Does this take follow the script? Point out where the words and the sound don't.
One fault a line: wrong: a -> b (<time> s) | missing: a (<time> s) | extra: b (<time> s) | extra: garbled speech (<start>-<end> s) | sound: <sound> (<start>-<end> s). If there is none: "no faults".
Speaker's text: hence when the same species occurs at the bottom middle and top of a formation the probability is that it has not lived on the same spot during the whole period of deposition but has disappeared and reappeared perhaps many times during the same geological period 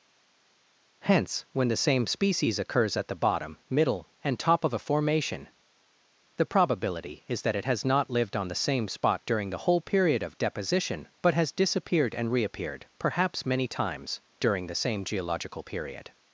no faults